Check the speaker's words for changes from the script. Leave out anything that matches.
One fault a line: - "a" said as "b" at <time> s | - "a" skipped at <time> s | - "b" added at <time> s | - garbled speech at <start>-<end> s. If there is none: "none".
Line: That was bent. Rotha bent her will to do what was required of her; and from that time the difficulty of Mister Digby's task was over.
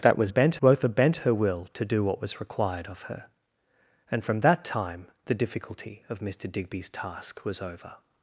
none